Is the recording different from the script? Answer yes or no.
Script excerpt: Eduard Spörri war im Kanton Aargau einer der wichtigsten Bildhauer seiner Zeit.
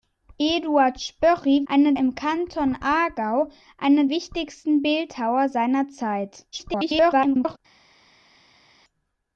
yes